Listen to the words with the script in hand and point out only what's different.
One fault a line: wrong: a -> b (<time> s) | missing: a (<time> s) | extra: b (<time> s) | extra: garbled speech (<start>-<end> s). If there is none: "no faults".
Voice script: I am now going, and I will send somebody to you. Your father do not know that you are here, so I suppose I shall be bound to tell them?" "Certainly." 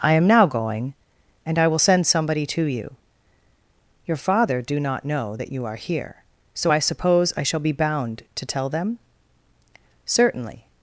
no faults